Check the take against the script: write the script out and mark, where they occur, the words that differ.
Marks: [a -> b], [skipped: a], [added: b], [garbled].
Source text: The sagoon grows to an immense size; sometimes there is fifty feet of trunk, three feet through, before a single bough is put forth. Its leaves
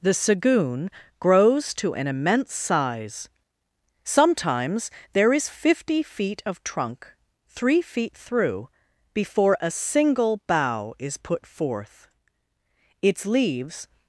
The sagoon grows to an immense size; sometimes there is fifty feet of trunk, three feet through, before a single bough is put forth. Its leaves